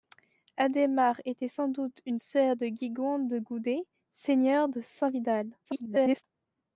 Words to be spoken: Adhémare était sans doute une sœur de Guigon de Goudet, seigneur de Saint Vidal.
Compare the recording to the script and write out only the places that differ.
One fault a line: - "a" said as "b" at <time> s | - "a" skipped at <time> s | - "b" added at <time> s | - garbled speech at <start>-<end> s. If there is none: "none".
- garbled speech at 5.6-6.2 s